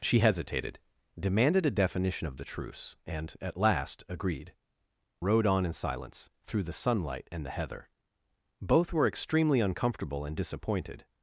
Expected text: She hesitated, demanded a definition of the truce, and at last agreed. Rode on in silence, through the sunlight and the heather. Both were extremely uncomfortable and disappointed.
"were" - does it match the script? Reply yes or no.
yes